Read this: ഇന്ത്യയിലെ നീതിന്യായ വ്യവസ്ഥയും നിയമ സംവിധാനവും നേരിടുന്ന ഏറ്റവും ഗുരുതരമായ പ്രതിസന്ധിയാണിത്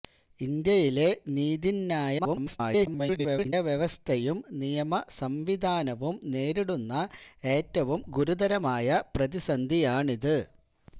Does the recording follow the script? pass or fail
fail